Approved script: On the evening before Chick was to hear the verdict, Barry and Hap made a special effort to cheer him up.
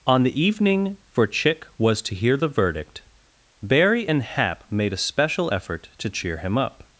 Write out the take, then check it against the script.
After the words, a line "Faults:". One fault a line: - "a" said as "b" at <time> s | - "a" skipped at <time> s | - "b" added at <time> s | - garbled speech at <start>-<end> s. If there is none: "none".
On the evening for Chick was to hear the verdict, Barry and Hap made a special effort to cheer him up.
Faults:
- "before" said as "for" at 1.1 s